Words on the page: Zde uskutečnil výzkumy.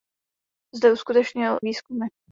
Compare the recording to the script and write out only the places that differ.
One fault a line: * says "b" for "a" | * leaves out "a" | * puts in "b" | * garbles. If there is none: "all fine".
all fine